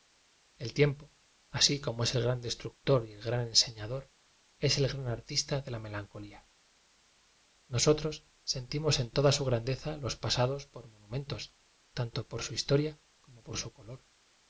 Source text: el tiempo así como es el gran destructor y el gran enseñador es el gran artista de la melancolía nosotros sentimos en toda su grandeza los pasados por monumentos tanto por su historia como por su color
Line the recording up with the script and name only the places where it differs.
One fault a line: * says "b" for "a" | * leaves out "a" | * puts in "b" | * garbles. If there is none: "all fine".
all fine